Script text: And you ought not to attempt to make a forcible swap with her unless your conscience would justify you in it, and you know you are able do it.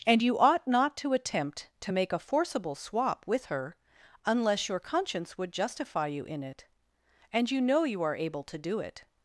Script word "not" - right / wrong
right